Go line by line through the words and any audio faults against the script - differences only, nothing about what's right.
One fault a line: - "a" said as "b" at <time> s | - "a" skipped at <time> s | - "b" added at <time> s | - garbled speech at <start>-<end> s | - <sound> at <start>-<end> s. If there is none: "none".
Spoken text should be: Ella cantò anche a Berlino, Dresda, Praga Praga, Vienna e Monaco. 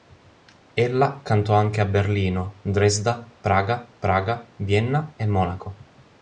none